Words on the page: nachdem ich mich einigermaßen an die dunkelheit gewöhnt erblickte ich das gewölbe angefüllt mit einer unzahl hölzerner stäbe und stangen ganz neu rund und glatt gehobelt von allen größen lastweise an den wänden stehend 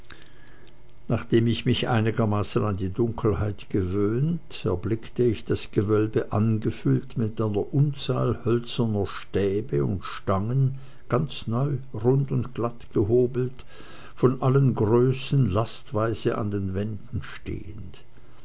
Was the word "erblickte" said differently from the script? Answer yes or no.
no